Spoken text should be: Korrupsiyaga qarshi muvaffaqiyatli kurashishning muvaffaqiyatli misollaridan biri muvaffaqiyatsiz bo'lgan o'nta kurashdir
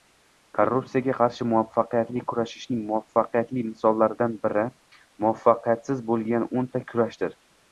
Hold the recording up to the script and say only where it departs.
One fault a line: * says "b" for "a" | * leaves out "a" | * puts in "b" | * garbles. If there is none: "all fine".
all fine